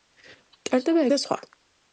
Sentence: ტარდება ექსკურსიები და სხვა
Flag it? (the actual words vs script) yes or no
yes